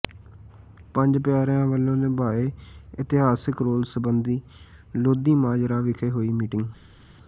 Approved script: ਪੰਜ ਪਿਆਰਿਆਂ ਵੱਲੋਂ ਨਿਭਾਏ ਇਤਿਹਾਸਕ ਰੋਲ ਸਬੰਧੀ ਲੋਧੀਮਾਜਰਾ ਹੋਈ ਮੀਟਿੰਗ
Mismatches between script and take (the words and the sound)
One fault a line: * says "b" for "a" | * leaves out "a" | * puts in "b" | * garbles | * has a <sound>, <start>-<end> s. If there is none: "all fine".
* puts in "ਵਿਖੇ"